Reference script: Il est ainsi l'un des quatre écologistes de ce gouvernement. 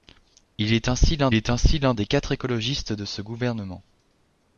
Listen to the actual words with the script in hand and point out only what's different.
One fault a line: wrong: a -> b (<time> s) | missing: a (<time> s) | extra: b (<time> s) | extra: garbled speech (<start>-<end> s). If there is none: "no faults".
extra: est ainsi l'un (1.3 s)